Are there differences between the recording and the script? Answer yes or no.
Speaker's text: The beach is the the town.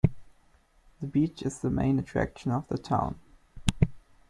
yes